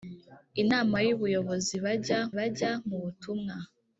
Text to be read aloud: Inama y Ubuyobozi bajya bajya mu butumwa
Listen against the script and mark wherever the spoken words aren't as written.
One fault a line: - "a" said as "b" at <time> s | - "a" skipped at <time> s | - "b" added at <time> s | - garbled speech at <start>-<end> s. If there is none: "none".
none